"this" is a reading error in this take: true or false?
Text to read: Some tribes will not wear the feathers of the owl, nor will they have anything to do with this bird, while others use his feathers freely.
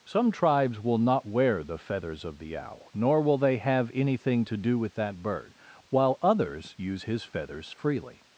true